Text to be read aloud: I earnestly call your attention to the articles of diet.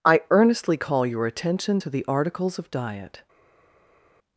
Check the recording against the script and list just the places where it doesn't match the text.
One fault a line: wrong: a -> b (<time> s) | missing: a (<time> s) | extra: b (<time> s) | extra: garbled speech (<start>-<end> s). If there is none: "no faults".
no faults